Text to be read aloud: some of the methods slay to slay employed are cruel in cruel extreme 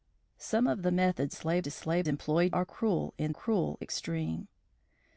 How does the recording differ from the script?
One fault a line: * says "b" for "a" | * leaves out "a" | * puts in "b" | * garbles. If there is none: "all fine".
all fine